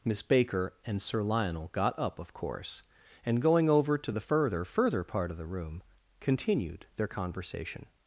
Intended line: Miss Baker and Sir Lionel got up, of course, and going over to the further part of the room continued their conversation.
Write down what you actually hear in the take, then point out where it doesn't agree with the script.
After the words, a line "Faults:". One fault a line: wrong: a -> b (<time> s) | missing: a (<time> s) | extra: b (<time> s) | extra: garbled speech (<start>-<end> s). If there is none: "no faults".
Miss Baker and Sir Lionel got up, of course, and going over to the further further part of the room continued their conversation.
Faults:
extra: further (4.6 s)